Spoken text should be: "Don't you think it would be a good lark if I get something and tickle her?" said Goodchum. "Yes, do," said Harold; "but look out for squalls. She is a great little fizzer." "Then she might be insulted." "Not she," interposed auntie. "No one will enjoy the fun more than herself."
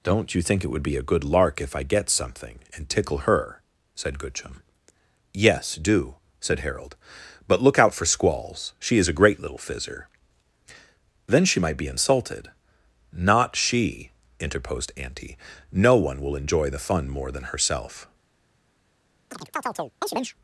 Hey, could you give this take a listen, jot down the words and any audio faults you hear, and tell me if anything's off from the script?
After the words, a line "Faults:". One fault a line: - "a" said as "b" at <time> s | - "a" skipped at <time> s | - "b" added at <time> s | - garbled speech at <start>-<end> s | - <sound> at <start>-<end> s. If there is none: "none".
"Don't you think it would be a good lark if I get something and tickle her?" said Goodchum. "Yes, do," said Harold; "but look out for squalls. She is a great little fizzer." "Then she might be insulted." "Not she," interposed auntie. "No one will enjoy the fun more than herself."
Faults:
- chirp at 19.3-20.4 s